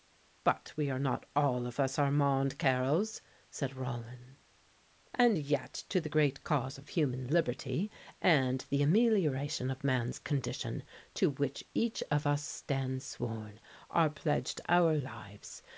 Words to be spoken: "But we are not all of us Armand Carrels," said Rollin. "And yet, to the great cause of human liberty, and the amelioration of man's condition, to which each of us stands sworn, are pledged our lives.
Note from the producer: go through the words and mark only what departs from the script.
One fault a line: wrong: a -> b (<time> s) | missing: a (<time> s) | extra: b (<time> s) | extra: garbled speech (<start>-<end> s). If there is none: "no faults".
no faults